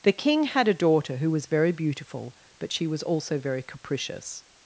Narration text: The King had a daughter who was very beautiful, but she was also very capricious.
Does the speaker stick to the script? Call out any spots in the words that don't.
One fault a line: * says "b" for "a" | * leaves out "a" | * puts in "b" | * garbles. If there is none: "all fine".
all fine